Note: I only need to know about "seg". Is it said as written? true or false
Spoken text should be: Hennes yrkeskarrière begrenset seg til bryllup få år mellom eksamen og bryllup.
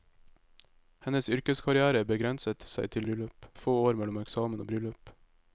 true